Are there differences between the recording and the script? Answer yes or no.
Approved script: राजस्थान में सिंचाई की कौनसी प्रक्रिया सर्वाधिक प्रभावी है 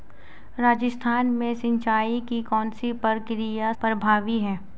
yes